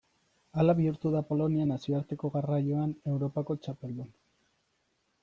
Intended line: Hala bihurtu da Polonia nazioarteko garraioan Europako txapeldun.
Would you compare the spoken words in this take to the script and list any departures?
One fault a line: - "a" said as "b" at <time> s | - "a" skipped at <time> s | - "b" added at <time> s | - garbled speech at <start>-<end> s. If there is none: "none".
none